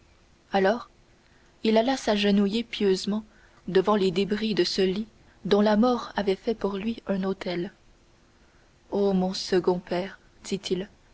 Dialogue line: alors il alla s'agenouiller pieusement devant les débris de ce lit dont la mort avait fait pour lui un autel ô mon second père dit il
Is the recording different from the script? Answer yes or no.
no